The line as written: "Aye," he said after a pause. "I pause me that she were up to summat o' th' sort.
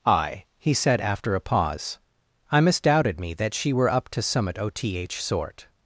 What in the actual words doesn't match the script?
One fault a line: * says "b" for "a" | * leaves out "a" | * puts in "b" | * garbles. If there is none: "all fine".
* says "misdoubted" for "pause"